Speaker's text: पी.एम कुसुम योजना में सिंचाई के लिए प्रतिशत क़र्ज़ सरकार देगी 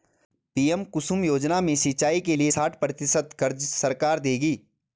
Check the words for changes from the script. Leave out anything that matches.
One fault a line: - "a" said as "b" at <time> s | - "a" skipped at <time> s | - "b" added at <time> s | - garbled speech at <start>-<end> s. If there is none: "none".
- "साठ" added at 2.5 s